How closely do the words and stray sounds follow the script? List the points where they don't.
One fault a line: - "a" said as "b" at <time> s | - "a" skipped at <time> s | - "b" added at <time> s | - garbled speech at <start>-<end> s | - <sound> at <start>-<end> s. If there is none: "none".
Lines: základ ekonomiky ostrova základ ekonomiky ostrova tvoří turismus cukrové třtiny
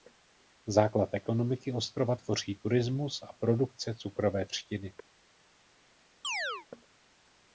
- "základ ekonomiky ostrova tvoří turismus" said as "tvoří turismus a produkce" at 2.1 s
- chirp at 6.2-6.7 s